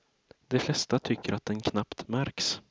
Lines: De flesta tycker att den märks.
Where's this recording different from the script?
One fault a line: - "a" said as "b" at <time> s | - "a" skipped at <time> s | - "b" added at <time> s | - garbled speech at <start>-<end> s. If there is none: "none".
- "knappt" added at 1.6 s